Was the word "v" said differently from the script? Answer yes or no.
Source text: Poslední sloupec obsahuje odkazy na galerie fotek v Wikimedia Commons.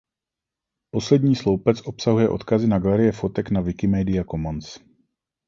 yes